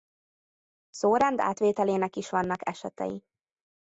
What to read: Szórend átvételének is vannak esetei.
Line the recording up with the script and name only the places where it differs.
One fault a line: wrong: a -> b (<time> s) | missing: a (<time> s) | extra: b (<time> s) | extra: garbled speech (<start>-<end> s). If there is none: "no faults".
no faults